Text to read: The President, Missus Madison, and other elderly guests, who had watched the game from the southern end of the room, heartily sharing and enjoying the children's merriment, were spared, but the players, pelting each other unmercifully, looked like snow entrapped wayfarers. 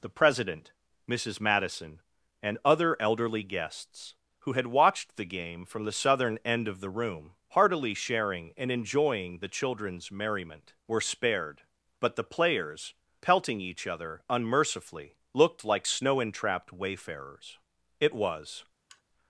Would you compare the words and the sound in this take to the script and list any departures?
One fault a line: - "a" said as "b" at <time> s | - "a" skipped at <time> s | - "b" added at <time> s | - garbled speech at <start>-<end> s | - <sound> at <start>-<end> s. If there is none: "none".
- "It was" added at 18.0 s
- sigh at 18.9-19.0 s